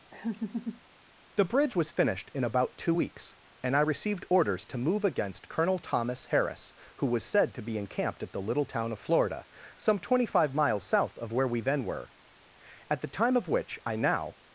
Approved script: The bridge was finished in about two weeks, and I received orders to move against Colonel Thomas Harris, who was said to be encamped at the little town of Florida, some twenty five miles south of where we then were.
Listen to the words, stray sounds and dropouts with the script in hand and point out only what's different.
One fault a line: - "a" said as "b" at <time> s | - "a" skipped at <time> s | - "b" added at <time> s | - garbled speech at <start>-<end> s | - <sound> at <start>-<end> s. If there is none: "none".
- laugh at 0.1-0.8 s
- "At the time of which I now" added at 12.9 s